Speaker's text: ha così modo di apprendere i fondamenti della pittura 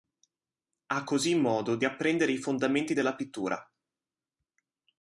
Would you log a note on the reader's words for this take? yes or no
no